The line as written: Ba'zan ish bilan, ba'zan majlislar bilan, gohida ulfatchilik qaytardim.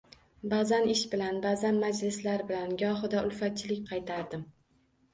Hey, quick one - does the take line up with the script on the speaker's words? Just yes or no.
yes